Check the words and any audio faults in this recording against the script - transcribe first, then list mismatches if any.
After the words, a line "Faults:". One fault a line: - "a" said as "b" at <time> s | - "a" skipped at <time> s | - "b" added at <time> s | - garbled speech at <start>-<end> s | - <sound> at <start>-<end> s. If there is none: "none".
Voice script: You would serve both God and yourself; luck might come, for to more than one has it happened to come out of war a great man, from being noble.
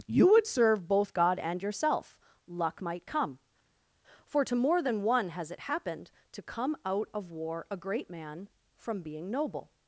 You would serve both God and yourself; luck might come, for to more than one has it happened to come out of war a great man, from being noble.
Faults:
none